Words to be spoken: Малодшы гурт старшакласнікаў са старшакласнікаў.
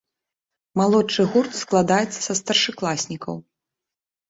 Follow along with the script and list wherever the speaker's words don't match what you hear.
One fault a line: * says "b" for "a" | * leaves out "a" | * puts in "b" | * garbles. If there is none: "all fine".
* says "складаецца" for "старшакласнікаў"